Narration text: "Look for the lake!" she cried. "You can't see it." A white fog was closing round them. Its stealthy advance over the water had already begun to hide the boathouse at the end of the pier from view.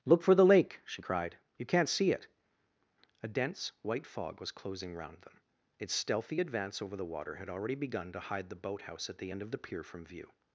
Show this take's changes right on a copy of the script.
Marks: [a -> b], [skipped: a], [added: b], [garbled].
"Look for the lake!" she cried. "You can't see it." A [added: dense] white fog was closing round them. Its stealthy advance over the water had already begun to hide the boathouse at the end of the pier from view.